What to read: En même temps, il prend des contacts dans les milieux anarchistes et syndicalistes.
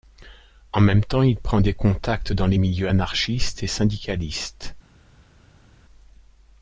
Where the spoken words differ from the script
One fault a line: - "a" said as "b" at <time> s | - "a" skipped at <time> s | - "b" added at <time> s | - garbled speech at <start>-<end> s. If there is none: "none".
none